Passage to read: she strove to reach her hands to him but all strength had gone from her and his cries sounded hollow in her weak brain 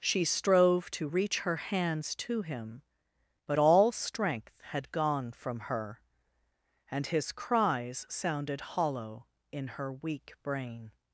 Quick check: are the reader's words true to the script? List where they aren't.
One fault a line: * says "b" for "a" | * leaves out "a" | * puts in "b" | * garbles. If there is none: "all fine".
all fine